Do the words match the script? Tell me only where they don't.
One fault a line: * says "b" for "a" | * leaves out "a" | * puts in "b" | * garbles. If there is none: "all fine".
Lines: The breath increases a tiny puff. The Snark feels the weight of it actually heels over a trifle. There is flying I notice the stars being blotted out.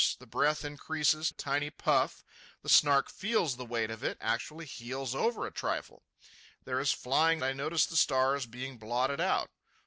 all fine